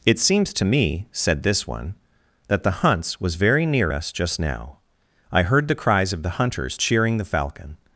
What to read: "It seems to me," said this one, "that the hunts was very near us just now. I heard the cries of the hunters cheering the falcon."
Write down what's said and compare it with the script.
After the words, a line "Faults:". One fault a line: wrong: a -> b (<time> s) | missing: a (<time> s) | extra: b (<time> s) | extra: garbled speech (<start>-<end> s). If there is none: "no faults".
"It seems to me," said this one, "that the hunts was very near us just now. I heard the cries of the hunters cheering the falcon."
Faults:
no faults